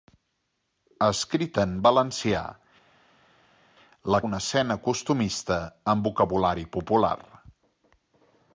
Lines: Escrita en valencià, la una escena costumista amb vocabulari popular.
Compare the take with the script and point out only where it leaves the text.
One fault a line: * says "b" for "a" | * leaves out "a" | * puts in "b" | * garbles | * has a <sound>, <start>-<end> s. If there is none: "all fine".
all fine